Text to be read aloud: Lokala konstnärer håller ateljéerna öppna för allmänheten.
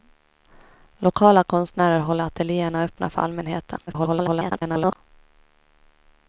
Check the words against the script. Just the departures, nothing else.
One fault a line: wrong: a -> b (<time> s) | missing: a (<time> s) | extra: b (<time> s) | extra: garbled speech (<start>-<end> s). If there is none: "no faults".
extra: garbled speech (3.9-5.0 s)